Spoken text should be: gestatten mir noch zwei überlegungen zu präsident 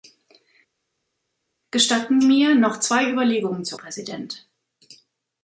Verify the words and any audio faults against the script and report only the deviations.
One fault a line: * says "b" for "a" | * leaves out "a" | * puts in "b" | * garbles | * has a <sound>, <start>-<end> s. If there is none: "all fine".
all fine